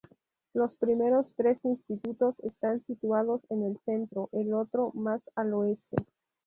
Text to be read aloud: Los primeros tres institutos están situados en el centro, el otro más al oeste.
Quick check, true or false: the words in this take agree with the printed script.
true